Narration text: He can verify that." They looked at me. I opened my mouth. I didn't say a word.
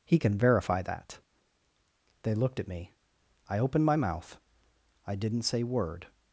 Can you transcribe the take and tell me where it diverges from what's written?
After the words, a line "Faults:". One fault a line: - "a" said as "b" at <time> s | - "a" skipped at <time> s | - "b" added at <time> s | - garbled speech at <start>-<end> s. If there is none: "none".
He can verify that." They looked at me. I opened my mouth. I didn't say word.
Faults:
- "a" skipped at 5.6 s